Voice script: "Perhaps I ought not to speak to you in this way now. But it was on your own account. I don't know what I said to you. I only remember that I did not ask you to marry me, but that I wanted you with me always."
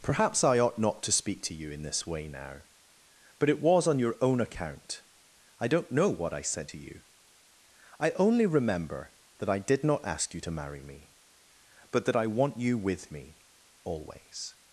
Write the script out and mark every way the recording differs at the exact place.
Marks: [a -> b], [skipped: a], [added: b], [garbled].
"Perhaps I ought not to speak to you in this way now. But it was on your own account. I don't know what I said to you. I only remember that I did not ask you to marry me, but that I [wanted -> want] you with me always."